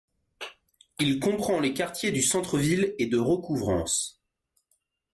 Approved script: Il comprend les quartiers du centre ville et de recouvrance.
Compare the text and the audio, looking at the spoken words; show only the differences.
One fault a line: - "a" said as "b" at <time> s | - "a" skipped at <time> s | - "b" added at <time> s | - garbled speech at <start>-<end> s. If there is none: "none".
none